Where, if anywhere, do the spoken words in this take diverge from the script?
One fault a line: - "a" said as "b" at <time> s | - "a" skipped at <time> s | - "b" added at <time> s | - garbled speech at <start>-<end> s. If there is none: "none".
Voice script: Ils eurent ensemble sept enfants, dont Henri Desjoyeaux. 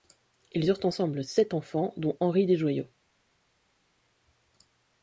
none